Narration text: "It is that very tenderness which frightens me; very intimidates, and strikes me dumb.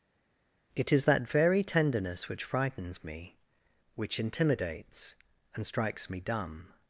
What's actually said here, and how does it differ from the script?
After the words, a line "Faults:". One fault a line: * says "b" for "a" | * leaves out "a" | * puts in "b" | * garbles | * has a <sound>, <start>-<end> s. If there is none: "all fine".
"It is that very tenderness which frightens me; which intimidates, and strikes me dumb.
Faults:
* says "which" for "very"